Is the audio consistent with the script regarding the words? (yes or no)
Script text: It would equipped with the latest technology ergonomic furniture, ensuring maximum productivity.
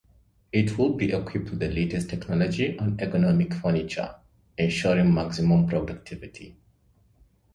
no